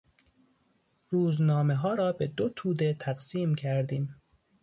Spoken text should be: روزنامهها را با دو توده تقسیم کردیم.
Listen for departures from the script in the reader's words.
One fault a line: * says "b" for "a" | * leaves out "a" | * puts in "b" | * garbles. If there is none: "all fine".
* says "به" for "با"